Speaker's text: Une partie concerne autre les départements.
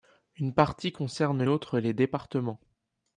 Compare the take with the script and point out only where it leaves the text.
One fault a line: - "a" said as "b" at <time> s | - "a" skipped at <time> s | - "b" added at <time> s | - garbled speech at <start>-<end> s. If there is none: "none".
none